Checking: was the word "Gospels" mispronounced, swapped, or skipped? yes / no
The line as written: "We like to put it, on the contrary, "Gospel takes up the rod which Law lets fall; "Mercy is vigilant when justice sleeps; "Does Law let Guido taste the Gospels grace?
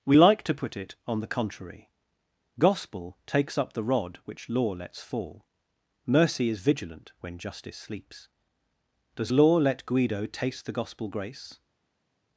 yes